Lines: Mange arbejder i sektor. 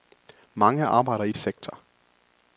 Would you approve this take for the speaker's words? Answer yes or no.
yes